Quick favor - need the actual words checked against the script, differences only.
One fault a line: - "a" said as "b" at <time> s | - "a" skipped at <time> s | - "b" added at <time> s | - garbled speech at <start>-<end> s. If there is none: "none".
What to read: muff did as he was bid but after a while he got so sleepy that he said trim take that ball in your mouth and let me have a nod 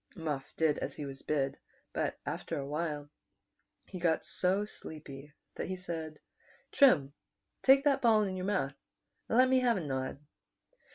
none